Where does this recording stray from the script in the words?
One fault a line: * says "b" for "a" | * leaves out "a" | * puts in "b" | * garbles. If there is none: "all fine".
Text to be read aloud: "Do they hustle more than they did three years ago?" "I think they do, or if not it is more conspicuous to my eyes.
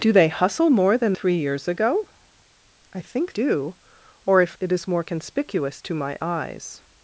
* leaves out "they did"
* leaves out "they"
* leaves out "not"